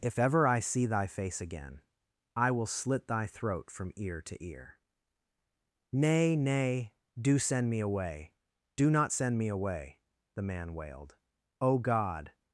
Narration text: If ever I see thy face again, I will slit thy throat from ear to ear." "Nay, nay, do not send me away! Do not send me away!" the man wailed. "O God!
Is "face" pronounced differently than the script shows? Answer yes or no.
no